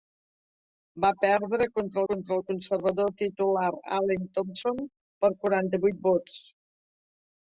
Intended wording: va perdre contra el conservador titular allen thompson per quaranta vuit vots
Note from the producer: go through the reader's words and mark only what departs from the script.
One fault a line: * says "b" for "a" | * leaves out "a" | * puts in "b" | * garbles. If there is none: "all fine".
* puts in "contra"